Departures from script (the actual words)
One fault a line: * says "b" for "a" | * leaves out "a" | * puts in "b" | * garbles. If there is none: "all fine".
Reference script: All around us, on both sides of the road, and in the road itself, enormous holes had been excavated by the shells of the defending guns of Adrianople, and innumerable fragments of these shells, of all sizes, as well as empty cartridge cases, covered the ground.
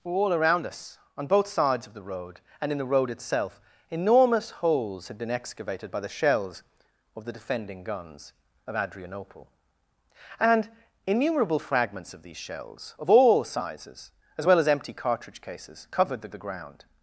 * puts in "the"